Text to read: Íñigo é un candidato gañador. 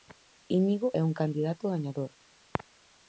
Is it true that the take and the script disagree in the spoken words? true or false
false